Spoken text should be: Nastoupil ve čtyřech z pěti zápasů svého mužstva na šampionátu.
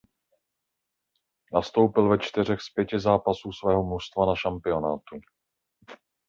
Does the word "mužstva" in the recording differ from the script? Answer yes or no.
no